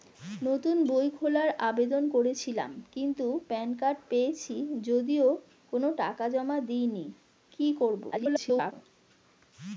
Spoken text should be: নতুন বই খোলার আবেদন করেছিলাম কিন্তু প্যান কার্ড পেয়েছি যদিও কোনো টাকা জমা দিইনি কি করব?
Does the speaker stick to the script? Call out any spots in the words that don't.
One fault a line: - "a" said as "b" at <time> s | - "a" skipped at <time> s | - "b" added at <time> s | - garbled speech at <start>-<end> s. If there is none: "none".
- garbled speech at 8.1-8.7 s